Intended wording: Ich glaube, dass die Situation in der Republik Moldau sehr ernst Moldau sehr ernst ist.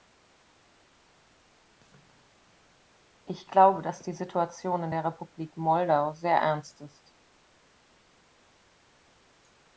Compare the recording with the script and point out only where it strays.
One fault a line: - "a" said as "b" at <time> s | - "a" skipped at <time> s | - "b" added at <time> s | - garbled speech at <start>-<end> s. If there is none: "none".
- "Moldau sehr ernst" skipped at 6.8 s